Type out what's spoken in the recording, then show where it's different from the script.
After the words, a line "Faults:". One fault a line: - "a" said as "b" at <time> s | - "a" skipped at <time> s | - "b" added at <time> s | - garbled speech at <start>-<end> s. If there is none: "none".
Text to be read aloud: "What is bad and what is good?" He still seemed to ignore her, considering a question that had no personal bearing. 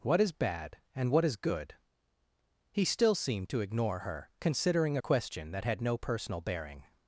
"What is bad and what is good?" He still seemed to ignore her, considering a question that had no personal bearing.
Faults:
none